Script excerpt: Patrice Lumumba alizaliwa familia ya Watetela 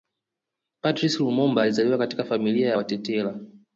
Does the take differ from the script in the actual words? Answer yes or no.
yes